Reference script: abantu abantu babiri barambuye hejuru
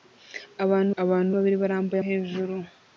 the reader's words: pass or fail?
pass